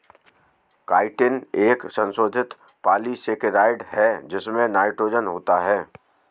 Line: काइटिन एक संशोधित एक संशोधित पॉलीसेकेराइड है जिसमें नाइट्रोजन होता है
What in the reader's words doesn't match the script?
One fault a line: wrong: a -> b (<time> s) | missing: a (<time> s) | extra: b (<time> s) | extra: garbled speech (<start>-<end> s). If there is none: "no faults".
missing: एक संशोधित (2.5 s)